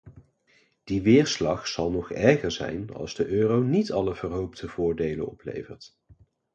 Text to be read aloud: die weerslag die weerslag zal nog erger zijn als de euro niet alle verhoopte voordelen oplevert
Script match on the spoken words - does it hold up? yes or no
no